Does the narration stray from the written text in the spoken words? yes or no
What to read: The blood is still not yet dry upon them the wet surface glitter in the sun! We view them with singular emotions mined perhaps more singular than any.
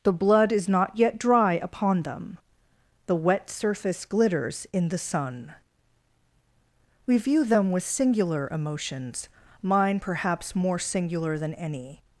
yes